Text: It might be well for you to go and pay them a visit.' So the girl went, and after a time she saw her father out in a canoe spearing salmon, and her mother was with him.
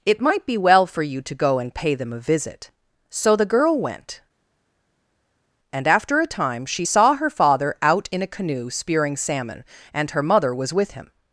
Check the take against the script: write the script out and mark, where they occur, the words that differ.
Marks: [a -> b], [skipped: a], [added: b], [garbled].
It might be well for you to go and pay them a visit.' So the girl went, and after a time she saw her father out in a canoe spearing salmon, and her mother was with him.